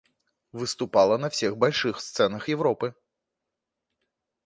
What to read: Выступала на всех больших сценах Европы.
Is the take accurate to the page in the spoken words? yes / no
yes